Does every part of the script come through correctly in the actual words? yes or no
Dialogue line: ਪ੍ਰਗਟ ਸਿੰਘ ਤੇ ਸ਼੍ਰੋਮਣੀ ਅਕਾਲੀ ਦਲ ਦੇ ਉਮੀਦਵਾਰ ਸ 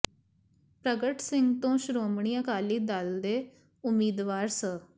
yes